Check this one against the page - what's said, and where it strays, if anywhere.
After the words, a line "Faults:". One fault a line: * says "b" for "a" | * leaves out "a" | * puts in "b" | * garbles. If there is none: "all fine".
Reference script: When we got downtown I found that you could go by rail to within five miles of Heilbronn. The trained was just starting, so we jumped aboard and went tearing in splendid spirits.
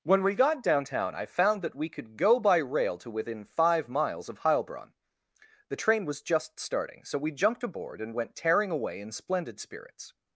When we got downtown I found that we could go by rail to within five miles of Heilbronn. The train was just starting, so we jumped aboard and went tearing away in splendid spirits.
Faults:
* says "we" for "you"
* says "train" for "trained"
* puts in "away"